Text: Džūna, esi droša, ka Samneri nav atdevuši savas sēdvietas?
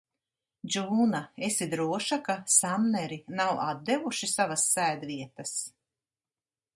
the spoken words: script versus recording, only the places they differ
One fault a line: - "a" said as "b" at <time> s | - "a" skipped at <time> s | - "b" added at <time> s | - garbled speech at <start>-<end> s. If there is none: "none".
none